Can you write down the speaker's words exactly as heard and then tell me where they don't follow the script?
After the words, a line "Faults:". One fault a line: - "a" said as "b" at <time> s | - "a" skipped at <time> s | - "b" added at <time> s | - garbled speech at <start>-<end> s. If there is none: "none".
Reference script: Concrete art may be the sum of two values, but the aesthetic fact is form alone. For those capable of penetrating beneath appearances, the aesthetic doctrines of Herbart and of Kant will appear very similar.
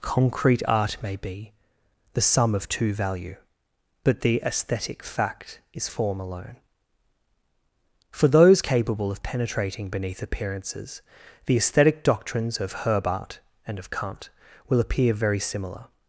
Concrete art may be the sum of two value, but the aesthetic fact is form alone. For those capable of penetrating beneath appearances, the aesthetic doctrines of Herbart and of Kant will appear very similar.
Faults:
- "values" said as "value" at 2.9 s